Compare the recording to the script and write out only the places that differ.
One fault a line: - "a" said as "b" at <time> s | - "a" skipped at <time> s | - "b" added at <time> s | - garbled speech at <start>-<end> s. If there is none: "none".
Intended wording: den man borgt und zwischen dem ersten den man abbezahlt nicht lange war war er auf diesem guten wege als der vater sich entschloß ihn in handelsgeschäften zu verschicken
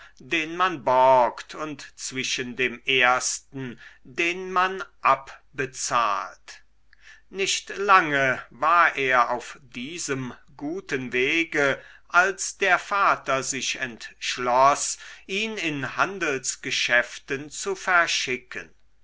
- "war" skipped at 8.9 s